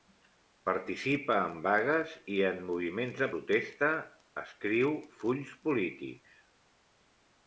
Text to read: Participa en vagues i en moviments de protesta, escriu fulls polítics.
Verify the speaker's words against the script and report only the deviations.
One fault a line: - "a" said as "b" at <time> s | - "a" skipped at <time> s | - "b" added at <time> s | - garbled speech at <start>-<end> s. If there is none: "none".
none